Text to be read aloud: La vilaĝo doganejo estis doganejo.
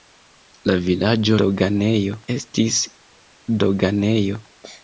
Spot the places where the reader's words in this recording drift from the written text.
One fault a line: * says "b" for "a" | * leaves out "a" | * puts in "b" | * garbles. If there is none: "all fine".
all fine